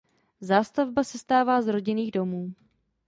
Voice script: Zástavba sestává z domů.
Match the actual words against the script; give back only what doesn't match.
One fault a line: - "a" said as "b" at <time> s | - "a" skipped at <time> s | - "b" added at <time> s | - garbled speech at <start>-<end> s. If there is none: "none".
- "rodinných" added at 1.7 s